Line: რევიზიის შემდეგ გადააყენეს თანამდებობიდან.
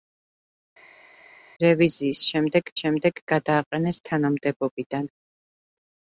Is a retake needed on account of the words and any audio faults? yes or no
yes